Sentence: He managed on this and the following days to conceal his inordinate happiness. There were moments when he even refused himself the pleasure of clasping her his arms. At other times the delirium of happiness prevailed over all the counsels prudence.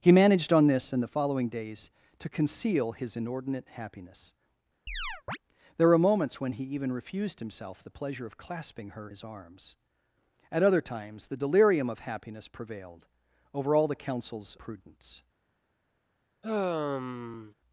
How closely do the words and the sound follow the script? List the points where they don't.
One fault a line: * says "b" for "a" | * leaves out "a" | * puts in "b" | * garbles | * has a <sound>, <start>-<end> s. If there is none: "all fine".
* has a chirp, 4.9-5.4 s
* has a sigh, 16.4-17.5 s